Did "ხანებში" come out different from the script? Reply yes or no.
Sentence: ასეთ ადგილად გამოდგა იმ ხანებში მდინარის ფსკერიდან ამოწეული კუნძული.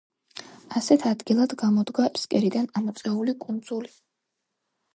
yes